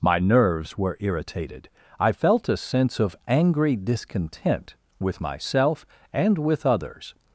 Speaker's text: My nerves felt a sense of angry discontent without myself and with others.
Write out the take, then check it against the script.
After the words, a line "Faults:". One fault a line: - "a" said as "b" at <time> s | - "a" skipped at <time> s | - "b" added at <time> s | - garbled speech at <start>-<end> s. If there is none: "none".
My nerves were irritated; I felt a sense of angry discontent with myself and with others.
Faults:
- "were irritated I" added at 0.8 s
- "without" said as "with" at 5.0 s